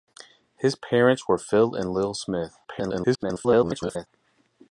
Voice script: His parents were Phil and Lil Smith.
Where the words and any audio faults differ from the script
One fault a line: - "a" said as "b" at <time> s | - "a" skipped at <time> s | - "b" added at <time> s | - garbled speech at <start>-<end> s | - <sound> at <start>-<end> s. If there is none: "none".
- garbled speech at 2.6-4.1 s